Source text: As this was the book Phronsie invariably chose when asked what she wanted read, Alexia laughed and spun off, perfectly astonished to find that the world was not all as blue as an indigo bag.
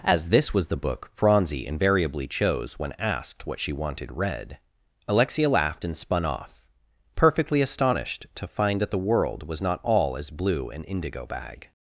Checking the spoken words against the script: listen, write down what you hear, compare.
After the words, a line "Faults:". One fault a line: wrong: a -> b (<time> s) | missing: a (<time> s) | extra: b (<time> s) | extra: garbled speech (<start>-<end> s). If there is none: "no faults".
As this was the book Phronsie invariably chose when asked what she wanted read, Alexia laughed and spun off, perfectly astonished to find that the world was not all as blue an indigo bag.
Faults:
missing: as (10.7 s)